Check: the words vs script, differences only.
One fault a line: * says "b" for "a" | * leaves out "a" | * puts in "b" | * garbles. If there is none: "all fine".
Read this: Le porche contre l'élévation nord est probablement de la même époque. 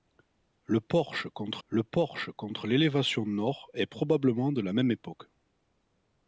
* puts in "le porche contre"